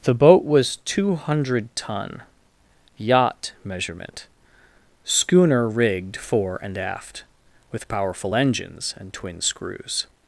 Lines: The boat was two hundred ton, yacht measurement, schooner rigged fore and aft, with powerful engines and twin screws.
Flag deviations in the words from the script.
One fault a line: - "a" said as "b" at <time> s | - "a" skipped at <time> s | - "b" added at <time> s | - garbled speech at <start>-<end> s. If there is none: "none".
none